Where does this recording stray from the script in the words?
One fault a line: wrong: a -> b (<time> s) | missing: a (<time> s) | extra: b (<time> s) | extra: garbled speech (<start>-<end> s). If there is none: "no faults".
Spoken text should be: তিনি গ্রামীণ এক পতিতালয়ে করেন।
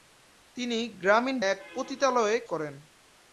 no faults